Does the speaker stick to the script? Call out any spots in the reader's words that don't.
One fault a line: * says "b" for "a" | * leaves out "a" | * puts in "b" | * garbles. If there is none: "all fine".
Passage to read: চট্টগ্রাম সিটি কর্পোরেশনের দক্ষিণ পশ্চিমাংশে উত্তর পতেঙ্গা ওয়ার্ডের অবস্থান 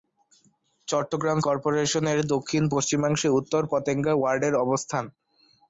* leaves out "সিটি"